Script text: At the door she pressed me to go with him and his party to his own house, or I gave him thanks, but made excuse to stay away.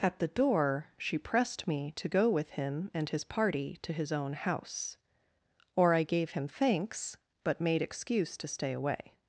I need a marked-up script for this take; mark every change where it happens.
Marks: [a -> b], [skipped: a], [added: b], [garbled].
At the door she pressed me to go with him and his party to his own house, or I gave him thanks, but made excuse to stay away.